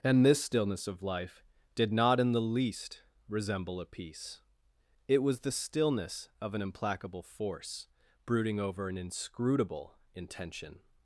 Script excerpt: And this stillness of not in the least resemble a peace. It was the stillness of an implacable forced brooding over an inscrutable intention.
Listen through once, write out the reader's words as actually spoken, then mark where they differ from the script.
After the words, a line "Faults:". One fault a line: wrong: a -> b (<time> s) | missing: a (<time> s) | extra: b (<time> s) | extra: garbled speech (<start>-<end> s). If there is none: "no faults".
And this stillness of life did not in the least resemble a peace. It was the stillness of an implacable force brooding over an inscrutable intention.
Faults:
extra: life did (1.0 s)
wrong: forced -> force (7.2 s)